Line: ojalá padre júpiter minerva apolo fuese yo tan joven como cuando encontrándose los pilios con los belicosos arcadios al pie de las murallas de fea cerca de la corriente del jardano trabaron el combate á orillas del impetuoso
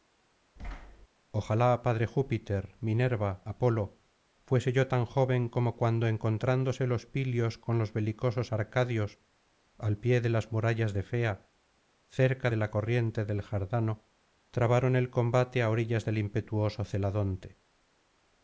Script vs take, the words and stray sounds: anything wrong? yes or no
yes